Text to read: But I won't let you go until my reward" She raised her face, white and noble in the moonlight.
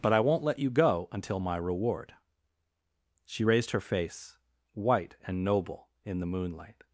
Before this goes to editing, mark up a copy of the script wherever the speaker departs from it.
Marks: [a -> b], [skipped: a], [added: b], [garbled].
But I won't let you go until my reward" She raised her face, white and noble in the moonlight.